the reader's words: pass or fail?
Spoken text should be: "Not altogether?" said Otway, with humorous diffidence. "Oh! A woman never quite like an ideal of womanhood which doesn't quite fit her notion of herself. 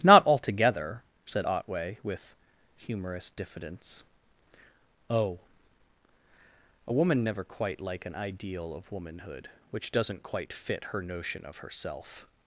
pass